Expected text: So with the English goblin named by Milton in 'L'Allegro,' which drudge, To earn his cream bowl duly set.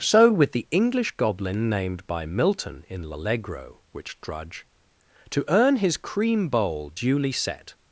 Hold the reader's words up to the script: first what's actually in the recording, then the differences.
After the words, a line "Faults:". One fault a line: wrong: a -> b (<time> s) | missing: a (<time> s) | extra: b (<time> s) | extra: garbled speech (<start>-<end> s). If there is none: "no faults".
So with the English goblin named by Milton in 'L'Allegro,' which drudge, To earn his cream bowl duly set.
Faults:
no faults